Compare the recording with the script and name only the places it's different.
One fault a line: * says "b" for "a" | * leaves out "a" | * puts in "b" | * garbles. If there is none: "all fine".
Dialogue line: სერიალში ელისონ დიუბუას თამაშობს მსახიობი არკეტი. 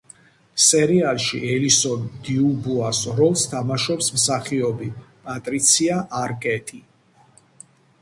* puts in "როლს"
* puts in "პატრიცია"